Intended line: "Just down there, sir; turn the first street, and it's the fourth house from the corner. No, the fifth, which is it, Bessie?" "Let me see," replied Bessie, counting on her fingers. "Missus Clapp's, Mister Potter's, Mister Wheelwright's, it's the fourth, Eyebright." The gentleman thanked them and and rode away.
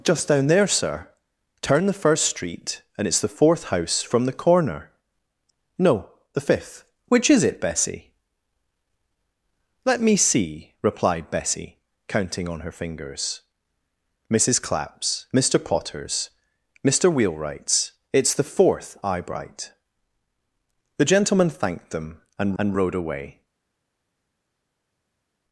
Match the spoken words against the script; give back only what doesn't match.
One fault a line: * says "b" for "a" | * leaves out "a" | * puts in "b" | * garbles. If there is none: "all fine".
all fine